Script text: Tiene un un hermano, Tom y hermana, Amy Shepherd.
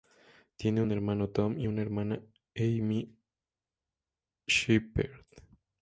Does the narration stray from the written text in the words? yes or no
yes